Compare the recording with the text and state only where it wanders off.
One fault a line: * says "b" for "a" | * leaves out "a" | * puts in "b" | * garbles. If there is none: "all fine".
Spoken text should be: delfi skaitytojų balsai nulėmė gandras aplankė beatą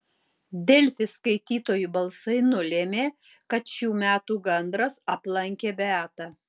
* puts in "kad šių metų"